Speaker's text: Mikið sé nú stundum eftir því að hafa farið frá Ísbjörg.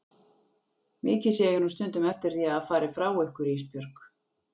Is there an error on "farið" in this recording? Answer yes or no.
no